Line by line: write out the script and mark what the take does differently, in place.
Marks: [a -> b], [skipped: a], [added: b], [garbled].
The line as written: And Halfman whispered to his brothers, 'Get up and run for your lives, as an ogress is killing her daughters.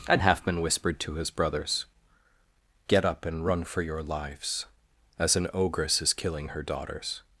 And Halfman whispered to his brothers, 'Get up and run for your lives, as an ogress is killing her daughters.